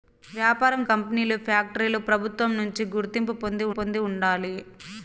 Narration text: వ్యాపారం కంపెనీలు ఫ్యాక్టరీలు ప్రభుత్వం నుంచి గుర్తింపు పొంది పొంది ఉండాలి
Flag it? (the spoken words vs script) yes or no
no